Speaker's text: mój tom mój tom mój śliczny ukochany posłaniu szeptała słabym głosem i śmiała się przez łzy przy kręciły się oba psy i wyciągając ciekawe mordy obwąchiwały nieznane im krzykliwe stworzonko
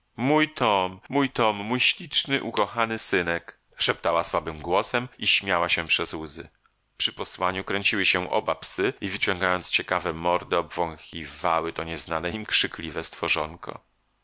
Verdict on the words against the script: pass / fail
fail